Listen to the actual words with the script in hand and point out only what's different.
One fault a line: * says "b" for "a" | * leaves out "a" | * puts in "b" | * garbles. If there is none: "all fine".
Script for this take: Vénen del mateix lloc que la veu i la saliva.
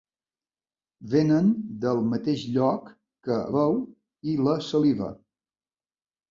* leaves out "la"